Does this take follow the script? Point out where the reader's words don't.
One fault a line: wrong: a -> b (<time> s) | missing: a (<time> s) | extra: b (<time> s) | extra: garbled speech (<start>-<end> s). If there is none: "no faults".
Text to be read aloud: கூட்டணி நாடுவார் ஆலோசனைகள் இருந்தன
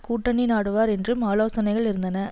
extra: என்றும் (0.9 s)